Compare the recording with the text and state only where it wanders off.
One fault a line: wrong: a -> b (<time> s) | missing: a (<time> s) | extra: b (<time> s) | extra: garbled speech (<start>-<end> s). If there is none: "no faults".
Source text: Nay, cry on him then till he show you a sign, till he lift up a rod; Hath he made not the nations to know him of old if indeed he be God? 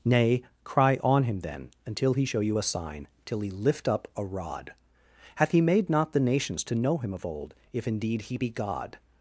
wrong: till -> until (1.9 s)